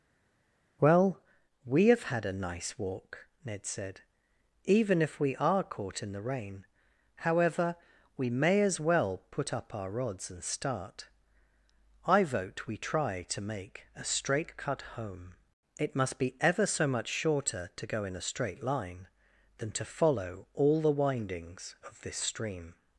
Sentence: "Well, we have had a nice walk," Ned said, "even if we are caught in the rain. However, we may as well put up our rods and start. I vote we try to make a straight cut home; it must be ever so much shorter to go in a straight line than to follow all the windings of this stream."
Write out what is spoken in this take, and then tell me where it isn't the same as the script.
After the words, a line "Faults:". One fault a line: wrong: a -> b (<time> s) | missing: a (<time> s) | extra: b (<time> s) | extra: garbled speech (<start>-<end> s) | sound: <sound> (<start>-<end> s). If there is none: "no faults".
"Well, we have had a nice walk," Ned said, "even if we are caught in the rain. However, we may as well put up our rods and start. I vote we try to make a straight cut home; it must be ever so much shorter to go in a straight line than to follow all the windings of this stream."
Faults:
no faults